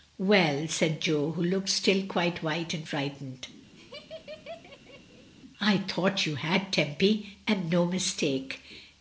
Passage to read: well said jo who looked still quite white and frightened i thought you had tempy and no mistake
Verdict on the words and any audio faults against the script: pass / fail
fail